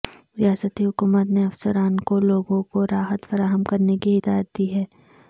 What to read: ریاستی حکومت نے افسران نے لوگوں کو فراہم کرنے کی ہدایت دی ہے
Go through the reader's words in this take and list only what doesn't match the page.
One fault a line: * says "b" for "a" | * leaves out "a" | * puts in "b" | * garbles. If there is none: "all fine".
* says "کو" for "نے"
* puts in "راحت"